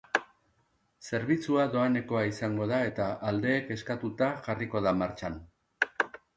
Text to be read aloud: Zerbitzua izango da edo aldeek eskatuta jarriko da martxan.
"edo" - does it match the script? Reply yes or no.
no